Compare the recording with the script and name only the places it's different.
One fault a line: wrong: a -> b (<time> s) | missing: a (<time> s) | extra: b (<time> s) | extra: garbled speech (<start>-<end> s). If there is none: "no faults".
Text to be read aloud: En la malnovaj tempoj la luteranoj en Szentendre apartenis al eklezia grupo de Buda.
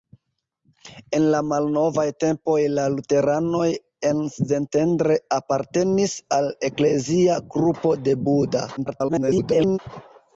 extra: garbled speech (8.8-9.8 s)